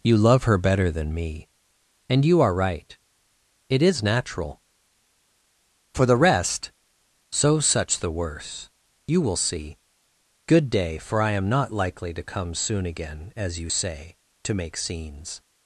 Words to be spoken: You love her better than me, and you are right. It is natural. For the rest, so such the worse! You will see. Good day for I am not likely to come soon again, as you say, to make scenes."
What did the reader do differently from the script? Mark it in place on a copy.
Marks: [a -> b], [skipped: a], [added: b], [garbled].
You love her better than me, and you are right. It is natural. For the rest, so such the worse! You will see. Good day for I am not likely to come soon again, as you say, to make scenes."